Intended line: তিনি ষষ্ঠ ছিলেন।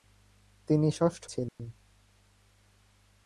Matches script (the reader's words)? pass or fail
pass